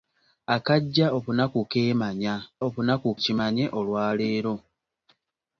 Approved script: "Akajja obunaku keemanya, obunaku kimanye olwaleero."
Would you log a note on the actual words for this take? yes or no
no